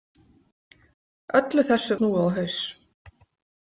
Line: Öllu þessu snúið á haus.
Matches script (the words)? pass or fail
pass